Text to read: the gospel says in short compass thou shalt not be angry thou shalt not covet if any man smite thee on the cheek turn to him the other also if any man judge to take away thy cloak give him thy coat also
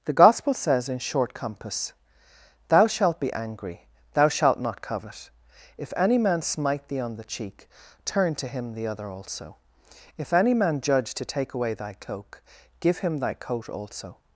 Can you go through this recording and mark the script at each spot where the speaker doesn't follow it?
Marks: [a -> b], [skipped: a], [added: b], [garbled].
the gospel says in short compass thou shalt [skipped: not] be angry thou shalt not covet if any man smite thee on the cheek turn to him the other also if any man judge to take away thy cloak give him thy coat also